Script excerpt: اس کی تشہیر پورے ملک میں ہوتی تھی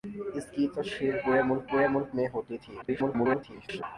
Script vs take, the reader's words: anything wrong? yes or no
yes